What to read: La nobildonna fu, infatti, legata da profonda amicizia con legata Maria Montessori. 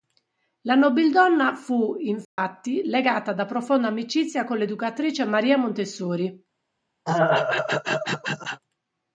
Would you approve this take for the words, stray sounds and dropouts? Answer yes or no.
no